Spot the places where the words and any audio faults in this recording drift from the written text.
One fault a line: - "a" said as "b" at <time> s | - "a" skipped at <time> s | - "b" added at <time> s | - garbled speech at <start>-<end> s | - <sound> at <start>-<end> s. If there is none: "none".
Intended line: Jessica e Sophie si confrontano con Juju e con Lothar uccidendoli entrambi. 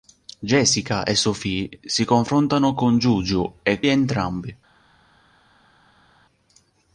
- "con Lothar uccidendoli" skipped at 3.8 s